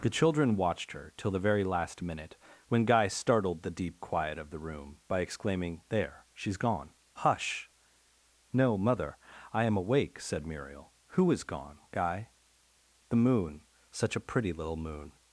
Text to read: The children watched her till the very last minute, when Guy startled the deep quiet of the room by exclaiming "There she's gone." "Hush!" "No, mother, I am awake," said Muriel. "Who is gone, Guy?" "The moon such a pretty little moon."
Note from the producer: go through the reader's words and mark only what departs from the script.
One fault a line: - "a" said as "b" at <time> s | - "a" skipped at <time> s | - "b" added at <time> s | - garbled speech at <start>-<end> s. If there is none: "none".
none